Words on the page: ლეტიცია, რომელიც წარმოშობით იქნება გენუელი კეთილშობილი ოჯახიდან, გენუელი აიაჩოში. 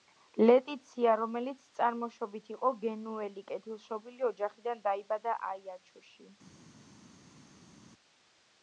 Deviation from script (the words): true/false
true